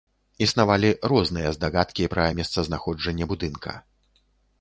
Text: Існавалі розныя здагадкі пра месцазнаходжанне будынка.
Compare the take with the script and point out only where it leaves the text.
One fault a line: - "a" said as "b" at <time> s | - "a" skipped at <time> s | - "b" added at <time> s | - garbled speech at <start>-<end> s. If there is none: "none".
none